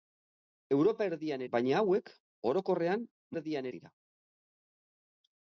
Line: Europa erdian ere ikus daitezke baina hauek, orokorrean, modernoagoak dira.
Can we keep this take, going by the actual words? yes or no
no